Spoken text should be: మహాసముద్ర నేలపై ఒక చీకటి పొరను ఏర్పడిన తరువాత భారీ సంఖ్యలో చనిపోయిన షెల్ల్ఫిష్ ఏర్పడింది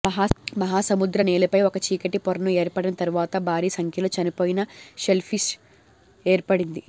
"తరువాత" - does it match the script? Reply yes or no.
yes